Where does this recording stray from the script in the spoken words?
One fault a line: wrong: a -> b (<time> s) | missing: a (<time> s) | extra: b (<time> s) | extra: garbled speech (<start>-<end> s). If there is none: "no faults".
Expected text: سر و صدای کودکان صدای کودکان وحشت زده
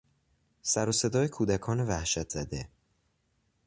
missing: صدای کودکان (1.8 s)